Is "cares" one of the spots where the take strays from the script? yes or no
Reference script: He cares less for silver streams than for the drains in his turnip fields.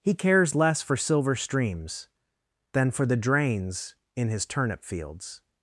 no